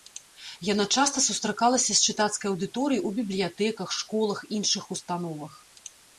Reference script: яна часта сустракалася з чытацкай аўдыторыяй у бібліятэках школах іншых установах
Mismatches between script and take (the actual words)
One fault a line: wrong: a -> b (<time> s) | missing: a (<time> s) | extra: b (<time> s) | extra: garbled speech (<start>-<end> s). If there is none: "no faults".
no faults